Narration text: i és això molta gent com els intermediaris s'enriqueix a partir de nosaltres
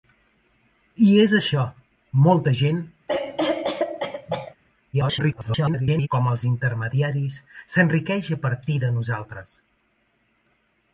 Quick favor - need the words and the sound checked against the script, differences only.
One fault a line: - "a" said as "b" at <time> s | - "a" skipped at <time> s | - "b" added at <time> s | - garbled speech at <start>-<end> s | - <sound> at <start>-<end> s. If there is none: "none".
- cough at 3.1-4.5 s
- garbled speech at 4.9-6.1 s